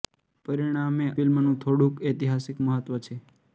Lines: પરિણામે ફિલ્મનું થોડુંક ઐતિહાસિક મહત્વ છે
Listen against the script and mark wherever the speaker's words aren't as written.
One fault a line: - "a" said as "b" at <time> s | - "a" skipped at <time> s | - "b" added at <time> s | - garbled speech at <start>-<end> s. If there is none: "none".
none